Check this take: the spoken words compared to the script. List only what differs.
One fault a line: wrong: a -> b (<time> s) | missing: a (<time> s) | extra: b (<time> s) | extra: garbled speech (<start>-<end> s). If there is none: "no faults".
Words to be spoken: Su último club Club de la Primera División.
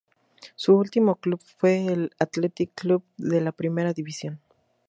extra: fue el Athletic (1.6 s)